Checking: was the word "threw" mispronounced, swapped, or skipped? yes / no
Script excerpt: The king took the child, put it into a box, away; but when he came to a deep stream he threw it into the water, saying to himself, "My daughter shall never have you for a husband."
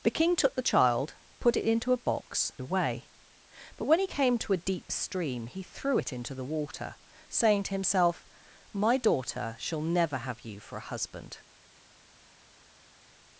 no